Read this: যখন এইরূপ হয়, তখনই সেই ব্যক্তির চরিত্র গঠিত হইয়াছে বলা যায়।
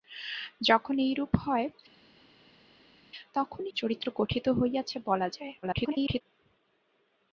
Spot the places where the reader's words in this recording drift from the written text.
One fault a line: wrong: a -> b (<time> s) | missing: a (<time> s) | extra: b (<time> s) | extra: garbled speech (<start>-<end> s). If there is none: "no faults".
missing: সেই ব্যক্তির (3.7 s)
extra: garbled speech (5.6-6.2 s)